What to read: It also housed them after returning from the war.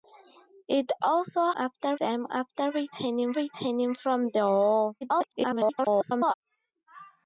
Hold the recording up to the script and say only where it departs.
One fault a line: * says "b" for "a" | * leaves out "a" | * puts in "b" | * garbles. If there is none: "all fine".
* says "after" for "housed"
* puts in "returning"
* garbles